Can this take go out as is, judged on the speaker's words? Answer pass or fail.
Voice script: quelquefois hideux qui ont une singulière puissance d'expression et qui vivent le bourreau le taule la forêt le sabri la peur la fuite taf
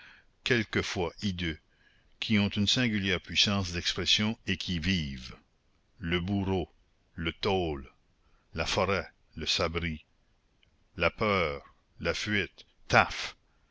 pass